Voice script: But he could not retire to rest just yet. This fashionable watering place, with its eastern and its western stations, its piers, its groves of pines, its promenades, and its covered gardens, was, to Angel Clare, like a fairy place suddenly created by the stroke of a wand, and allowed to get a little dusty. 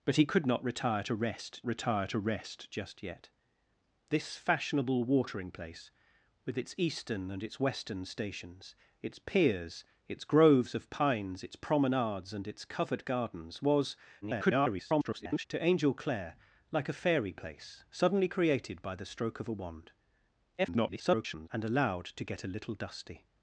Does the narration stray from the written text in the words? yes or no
yes